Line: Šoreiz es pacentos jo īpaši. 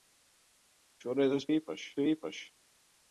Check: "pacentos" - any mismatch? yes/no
yes